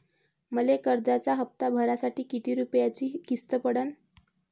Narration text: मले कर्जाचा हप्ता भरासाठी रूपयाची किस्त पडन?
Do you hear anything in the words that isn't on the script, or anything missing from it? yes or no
yes